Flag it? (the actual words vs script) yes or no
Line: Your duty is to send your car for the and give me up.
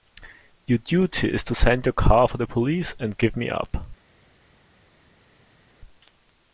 yes